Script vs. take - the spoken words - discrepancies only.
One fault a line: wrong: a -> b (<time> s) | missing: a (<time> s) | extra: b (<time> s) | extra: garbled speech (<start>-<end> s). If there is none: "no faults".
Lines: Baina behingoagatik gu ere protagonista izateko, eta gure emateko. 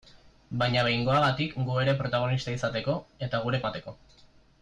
no faults